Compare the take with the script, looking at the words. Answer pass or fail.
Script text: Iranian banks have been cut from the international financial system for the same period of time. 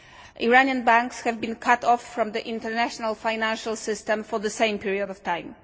fail